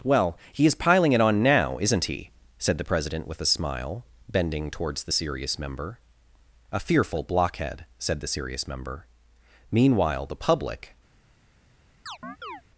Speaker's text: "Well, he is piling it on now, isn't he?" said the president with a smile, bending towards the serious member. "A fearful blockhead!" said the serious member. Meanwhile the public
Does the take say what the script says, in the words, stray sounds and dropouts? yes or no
no